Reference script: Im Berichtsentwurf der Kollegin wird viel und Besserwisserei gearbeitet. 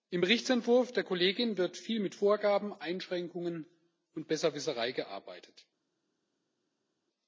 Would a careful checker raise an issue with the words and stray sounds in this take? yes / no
yes